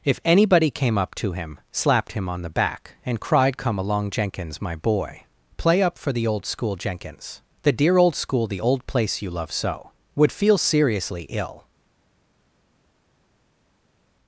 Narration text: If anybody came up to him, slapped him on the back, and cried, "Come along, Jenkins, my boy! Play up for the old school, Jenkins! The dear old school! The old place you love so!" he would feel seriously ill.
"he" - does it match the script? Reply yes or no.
no